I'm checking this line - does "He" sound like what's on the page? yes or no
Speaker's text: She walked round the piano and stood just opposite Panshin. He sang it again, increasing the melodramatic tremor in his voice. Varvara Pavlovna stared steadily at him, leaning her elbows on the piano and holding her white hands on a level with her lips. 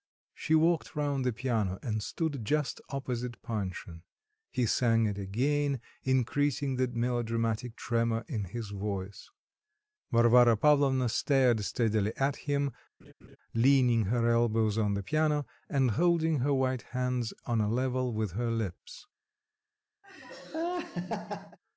yes